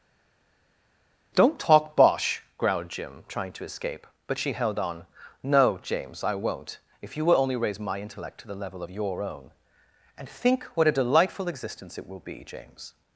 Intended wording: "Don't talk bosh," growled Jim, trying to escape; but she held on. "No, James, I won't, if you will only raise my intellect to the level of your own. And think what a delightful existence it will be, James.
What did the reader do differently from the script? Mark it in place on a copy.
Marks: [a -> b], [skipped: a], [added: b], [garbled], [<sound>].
"Don't talk bosh," growled Jim, trying to escape; but she held on. "No, James, I won't, if you will only raise my intellect to the level of your own. And think what a delightful existence it will be, James.